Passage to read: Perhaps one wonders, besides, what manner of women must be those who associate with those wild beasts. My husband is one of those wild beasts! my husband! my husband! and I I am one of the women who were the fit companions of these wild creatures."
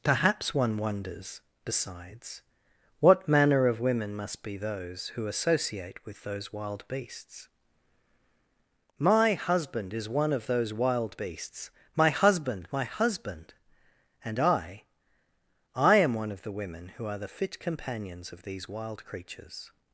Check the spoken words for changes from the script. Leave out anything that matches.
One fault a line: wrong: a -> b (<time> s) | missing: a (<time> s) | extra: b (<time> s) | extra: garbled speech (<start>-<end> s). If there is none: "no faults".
wrong: were -> are (17.1 s)